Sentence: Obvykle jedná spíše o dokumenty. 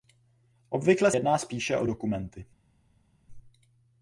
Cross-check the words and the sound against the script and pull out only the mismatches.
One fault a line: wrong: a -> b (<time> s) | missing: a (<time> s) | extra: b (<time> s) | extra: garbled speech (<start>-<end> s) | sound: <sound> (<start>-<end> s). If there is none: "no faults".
no faults